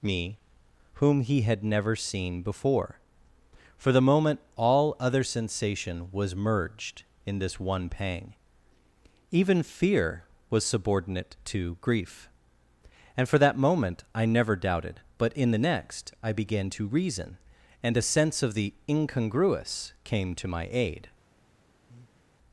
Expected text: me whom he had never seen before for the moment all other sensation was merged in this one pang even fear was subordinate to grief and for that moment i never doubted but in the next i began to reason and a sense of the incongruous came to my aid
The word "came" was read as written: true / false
true